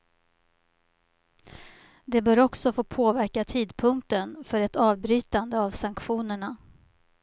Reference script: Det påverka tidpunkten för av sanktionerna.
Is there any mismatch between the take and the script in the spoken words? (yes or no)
yes